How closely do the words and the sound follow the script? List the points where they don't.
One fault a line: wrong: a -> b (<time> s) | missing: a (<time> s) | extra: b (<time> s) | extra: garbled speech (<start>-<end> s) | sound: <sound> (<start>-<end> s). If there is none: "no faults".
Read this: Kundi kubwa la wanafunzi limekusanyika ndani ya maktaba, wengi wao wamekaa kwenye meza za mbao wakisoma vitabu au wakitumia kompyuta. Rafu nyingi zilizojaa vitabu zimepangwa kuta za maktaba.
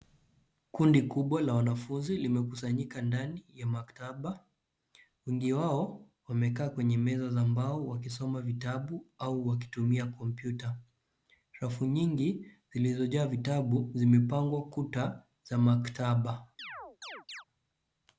sound: chirp (16.6-17.4 s)